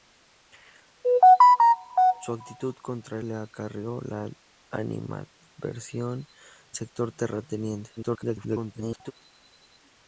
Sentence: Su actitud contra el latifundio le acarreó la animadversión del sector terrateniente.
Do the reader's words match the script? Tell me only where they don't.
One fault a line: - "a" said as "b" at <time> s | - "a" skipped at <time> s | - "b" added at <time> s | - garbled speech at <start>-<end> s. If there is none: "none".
- "el latifundio" skipped at 3.2 s
- "del" skipped at 6.3 s
- garbled speech at 8.0-9.1 s